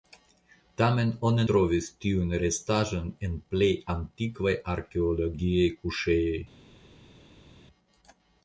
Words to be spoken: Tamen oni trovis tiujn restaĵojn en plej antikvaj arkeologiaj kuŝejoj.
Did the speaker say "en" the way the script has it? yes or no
yes